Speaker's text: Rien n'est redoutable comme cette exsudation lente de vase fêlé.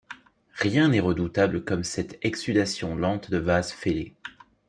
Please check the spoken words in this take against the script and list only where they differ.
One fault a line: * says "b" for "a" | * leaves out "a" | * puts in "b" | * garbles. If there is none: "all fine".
all fine